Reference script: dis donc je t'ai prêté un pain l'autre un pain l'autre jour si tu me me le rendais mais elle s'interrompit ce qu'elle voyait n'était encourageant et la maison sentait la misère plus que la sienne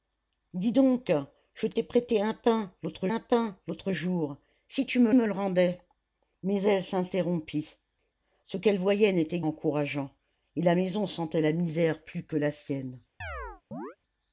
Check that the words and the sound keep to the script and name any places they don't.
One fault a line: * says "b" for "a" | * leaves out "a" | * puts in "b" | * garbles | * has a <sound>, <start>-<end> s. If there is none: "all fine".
* has a chirp, 13.2-14.0 s